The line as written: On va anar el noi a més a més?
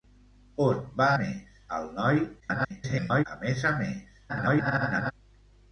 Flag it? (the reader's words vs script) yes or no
yes